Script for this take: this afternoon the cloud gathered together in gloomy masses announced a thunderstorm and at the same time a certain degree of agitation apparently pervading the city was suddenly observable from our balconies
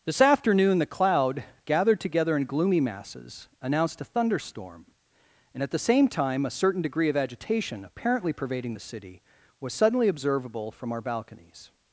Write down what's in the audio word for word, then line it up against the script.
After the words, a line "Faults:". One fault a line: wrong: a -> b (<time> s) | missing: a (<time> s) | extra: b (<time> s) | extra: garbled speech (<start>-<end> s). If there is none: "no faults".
this afternoon the cloud gathered together in gloomy masses announced a thunderstorm and at the same time a certain degree of agitation apparently pervading the city was suddenly observable from our balconies
Faults:
no faults